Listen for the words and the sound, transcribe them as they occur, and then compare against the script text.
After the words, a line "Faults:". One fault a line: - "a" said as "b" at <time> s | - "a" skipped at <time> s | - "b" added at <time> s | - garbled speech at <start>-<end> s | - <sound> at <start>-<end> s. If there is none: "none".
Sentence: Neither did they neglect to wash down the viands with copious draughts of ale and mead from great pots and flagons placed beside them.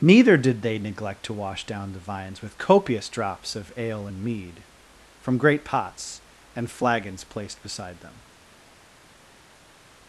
Neither did they neglect to wash down the vines with copious drops of ale and mead from great pots and flagons placed beside them.
Faults:
- "viands" said as "vines" at 2.0 s
- "draughts" said as "drops" at 3.1 s